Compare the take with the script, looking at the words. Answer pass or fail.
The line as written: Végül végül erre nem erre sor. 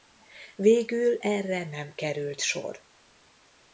fail